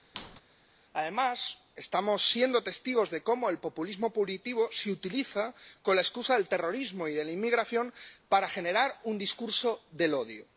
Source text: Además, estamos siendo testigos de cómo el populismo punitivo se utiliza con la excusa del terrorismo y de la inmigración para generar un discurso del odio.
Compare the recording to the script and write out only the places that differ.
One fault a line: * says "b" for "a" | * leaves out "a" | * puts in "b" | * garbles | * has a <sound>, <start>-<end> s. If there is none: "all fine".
* has a squeak, 0.1-0.4 s